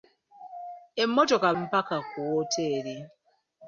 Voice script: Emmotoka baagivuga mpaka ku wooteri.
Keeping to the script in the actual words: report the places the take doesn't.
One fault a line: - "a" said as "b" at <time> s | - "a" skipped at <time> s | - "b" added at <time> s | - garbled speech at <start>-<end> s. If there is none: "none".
- "baagivuga" skipped at 1.5 s